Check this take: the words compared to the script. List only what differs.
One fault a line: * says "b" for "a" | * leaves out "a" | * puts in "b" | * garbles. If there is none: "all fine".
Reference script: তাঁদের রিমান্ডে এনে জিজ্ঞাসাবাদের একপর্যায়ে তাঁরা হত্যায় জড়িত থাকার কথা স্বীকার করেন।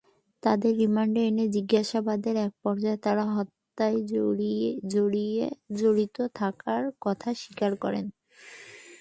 all fine